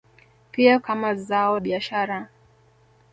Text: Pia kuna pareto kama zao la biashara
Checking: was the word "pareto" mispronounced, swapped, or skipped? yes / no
yes